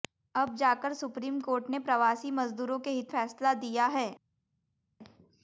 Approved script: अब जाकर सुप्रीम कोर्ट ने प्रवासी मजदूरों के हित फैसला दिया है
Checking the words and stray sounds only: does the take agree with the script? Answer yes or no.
yes